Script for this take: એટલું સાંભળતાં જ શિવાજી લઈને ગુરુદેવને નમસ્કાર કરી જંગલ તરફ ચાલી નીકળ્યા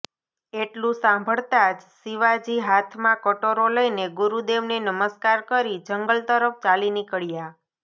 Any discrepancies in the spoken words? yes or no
yes